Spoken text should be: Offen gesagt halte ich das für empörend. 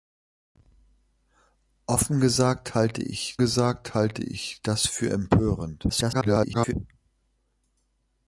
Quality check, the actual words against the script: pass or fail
fail